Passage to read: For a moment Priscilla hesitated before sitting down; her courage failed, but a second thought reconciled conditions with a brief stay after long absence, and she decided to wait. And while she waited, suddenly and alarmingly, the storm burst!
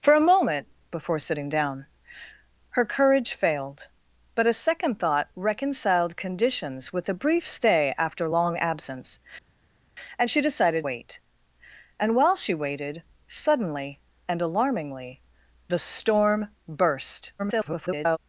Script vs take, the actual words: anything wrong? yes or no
yes